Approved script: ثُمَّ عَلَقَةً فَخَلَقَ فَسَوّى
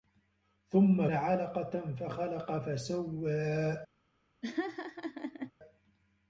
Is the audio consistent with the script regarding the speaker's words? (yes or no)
yes